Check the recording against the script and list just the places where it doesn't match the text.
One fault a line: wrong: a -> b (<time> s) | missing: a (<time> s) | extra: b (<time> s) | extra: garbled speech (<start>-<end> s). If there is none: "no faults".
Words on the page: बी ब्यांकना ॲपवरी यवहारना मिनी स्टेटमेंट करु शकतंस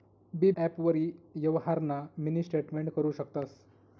missing: ब्यांकना (0.5 s)